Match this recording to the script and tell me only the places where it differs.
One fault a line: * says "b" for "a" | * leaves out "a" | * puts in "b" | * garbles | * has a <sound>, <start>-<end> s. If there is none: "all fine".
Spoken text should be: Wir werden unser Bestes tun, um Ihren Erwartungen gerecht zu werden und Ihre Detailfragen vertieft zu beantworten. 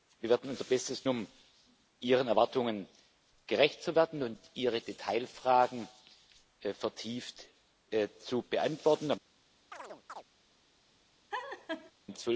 * leaves out "tun"
* has a chirp, 9.7-10.2 s
* has a laugh, 11.3-11.9 s